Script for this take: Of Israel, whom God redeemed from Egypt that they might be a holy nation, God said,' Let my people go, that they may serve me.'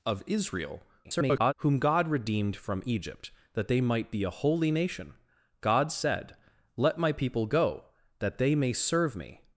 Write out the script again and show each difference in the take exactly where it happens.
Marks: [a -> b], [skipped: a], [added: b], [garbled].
Of Israel, [garbled] whom God redeemed from Egypt that they might be a holy nation, God said,' Let my people go, that they may serve me.'